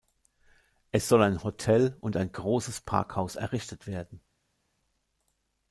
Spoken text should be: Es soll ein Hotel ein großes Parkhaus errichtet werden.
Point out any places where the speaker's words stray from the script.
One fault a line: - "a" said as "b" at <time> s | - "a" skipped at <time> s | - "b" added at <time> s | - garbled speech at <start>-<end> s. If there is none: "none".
- "und" added at 2.0 s